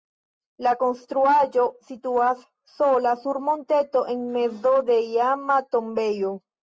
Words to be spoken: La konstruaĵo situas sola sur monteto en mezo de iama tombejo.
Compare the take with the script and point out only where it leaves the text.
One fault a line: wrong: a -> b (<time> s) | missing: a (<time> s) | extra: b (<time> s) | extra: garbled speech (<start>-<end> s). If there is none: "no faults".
no faults